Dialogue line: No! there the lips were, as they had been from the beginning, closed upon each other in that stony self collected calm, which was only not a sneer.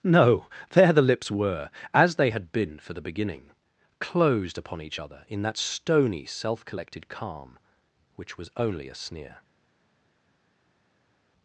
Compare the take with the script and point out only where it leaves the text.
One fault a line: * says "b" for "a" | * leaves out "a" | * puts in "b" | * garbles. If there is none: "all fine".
* says "for" for "from"
* leaves out "not"